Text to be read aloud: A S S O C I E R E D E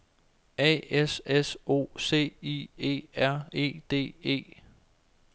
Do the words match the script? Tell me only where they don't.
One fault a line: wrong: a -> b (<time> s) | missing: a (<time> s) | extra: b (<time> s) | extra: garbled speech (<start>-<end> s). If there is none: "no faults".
no faults